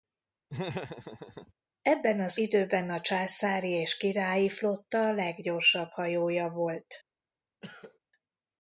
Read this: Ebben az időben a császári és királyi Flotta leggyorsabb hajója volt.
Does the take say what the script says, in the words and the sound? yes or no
no